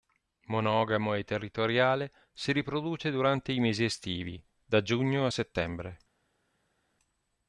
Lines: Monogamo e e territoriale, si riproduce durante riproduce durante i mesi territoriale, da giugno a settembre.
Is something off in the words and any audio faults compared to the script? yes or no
yes